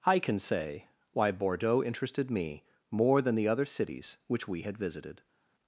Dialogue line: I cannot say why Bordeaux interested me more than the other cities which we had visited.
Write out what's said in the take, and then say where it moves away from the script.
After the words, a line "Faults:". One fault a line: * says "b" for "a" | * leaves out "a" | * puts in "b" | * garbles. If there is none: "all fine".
I can say why Bordeaux interested me more than the other cities which we had visited.
Faults:
* says "can" for "cannot"